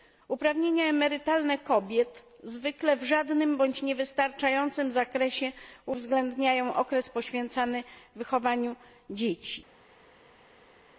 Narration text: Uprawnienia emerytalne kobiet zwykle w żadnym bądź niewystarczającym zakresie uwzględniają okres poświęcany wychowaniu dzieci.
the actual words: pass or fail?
pass